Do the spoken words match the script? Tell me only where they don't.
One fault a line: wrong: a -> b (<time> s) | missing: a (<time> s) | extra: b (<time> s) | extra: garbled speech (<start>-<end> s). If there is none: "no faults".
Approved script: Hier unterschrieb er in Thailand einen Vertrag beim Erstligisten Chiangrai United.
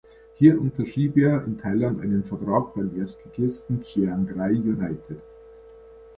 no faults